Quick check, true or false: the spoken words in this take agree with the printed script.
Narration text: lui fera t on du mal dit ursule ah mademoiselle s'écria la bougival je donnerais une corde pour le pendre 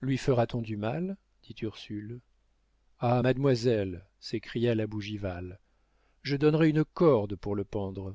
true